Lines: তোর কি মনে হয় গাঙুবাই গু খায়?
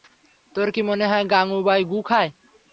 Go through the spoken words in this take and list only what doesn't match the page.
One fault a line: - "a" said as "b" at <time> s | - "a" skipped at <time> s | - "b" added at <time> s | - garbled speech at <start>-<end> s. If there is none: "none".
none